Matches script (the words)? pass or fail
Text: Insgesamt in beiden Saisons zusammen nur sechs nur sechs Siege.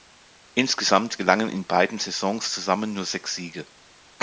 fail